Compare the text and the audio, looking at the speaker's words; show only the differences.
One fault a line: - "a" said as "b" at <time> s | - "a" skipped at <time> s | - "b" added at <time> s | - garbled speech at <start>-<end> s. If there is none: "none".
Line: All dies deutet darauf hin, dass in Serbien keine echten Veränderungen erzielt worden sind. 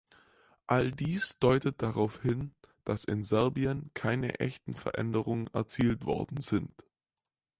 none